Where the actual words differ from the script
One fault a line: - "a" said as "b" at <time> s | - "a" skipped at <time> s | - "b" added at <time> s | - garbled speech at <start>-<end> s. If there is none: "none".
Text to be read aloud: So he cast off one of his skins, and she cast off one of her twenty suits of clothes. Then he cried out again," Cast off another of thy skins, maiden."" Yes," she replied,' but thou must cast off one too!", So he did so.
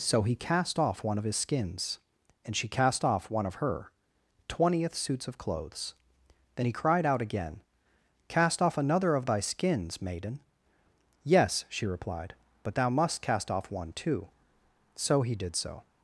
- "twenty" said as "twentieth" at 4.5 s